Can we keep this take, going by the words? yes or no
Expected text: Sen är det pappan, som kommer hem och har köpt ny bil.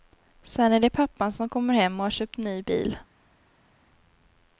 yes